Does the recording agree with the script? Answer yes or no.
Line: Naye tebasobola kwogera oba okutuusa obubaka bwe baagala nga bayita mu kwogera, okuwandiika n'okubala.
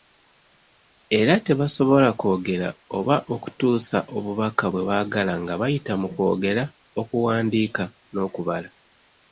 no